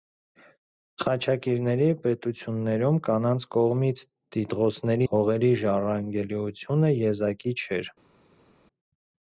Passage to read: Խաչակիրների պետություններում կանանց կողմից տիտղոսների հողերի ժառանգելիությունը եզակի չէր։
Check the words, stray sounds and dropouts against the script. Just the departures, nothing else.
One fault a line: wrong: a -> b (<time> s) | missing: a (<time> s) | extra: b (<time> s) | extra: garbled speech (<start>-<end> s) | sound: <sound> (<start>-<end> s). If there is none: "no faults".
no faults